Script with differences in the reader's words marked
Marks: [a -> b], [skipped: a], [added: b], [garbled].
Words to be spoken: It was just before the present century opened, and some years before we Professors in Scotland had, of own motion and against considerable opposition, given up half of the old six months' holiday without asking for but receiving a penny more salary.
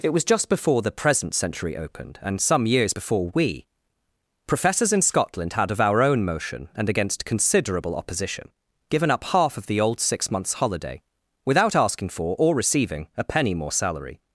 It was just before the present century opened, and some years before we Professors in Scotland had, of [added: our] own motion and against considerable opposition, given up half of the old six months' holiday without asking for [but -> or] receiving a penny more salary.